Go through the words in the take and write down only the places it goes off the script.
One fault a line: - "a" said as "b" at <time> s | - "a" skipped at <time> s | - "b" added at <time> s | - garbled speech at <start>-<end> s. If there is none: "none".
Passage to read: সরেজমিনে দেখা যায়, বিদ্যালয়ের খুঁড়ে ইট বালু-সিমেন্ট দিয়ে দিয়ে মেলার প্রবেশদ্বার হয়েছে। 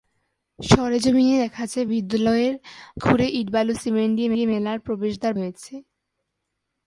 none